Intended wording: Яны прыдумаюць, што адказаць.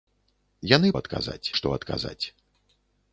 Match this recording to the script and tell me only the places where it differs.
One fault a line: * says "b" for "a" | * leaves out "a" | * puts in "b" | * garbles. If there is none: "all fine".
* says "адказаць" for "прыдумаюць"